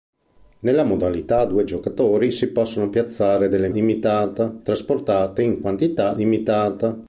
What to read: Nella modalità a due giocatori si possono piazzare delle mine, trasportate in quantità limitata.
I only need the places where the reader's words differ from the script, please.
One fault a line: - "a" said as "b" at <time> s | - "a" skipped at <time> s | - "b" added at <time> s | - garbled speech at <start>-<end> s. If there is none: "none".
- "mine" said as "limitata" at 3.7 s